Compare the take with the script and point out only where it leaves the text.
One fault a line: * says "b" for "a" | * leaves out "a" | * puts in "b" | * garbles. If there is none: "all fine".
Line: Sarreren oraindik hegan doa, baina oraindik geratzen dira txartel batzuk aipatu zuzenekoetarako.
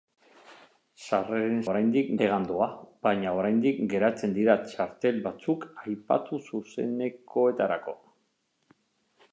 all fine